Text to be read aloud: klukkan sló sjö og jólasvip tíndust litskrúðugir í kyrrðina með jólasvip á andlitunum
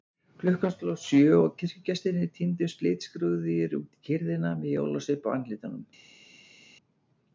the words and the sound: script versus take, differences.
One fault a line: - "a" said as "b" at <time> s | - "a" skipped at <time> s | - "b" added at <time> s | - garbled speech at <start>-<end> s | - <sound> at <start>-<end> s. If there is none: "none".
- "jólasvip" said as "kirkjugestirnir" at 1.6 s
- "út" added at 3.8 s